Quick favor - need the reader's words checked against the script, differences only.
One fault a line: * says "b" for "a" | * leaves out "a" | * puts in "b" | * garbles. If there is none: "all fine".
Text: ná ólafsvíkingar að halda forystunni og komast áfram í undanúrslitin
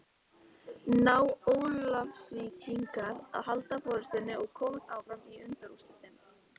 all fine